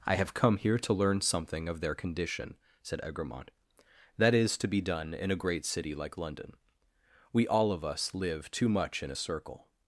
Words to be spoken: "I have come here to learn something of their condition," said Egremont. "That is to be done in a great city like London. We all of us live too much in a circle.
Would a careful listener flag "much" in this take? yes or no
no